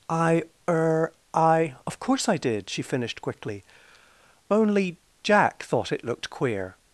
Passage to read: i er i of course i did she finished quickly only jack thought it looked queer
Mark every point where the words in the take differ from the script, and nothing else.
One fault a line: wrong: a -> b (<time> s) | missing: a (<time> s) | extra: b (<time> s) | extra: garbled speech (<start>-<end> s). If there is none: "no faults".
no faults